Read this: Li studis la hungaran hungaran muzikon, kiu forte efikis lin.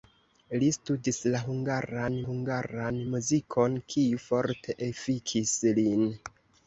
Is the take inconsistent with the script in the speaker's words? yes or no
no